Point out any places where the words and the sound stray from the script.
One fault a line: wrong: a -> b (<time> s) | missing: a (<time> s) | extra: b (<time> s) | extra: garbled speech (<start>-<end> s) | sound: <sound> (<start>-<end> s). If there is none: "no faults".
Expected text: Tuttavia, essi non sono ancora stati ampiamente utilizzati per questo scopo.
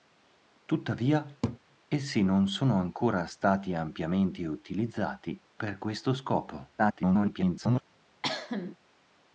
sound: laugh (1.4-1.6 s)
extra: garbled speech (6.8-7.8 s)
sound: cough (8.2-8.8 s)